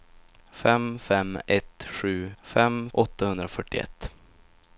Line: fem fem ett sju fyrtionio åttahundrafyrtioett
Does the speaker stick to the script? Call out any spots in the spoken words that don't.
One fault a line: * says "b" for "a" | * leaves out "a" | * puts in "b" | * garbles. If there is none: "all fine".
* says "fem" for "fyrtionio"